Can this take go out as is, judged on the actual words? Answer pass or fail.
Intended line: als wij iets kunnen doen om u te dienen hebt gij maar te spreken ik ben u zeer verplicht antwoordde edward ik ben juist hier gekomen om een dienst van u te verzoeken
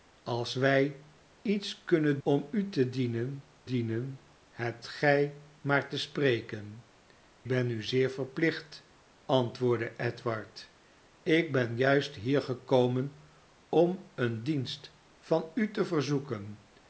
fail